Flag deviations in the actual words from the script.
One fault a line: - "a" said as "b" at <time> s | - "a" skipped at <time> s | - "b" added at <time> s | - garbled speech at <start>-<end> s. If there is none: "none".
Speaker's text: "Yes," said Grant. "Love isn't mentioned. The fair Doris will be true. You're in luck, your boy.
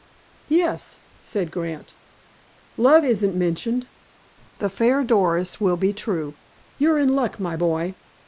- "your" said as "my" at 7.4 s